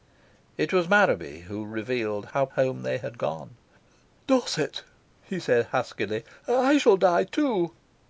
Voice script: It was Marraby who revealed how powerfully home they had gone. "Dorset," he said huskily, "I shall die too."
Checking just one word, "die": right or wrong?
right